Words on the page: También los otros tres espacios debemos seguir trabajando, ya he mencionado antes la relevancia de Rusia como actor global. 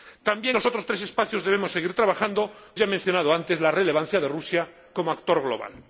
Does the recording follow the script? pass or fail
pass